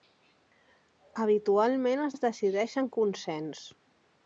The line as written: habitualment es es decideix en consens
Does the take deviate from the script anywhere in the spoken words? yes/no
no